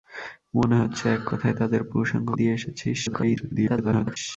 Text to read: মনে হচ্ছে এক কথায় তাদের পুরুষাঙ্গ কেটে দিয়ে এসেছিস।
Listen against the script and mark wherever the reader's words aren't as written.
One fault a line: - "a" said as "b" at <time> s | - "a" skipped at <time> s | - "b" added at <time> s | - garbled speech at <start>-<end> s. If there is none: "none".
- "কেটে" skipped at 2.3 s
- garbled speech at 3.1-4.2 s